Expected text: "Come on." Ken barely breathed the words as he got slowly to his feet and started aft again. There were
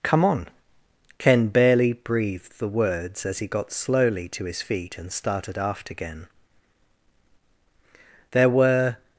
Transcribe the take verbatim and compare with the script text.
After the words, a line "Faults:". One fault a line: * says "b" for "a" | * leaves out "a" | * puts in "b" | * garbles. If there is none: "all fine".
"Come on." Ken barely breathed the words as he got slowly to his feet and started aft again. There were
Faults:
all fine